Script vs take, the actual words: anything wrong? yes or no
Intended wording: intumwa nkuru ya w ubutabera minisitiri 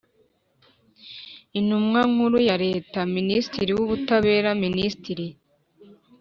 yes